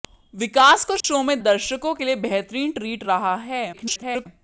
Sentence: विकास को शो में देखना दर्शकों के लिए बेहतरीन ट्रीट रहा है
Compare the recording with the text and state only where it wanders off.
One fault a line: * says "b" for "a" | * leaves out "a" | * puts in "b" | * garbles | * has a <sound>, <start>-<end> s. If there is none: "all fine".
* has a dropout, 1.0-1.0 s
* leaves out "देखना"
* garbles